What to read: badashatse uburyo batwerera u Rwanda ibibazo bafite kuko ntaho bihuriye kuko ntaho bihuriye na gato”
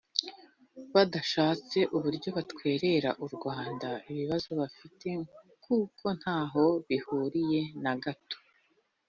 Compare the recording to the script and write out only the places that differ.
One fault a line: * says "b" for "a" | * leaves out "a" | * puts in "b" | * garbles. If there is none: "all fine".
* leaves out "kuko ntaho bihuriye"